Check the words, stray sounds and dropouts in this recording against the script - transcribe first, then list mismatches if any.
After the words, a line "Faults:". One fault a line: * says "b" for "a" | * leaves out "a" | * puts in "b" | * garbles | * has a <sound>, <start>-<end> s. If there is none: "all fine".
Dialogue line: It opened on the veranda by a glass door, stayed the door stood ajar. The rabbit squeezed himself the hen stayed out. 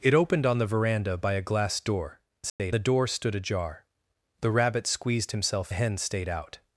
It opened on the veranda by a glass door, stayed the door stood ajar. The rabbit squeezed himself the hen stayed out.
Faults:
* has a dropout, 2.5-2.6 s